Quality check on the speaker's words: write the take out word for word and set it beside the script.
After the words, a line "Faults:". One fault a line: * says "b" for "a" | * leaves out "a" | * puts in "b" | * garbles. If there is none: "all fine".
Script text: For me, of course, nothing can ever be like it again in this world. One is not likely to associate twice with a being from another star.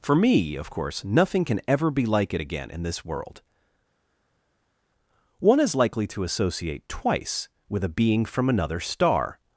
For me, of course, nothing can ever be like it again in this world. One is likely to associate twice with a being from another star.
Faults:
* leaves out "not"